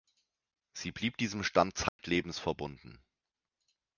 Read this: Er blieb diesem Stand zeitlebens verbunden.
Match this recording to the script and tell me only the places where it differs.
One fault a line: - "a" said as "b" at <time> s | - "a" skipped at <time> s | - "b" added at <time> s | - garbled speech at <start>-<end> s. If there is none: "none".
- "Er" said as "Sie" at 0.7 s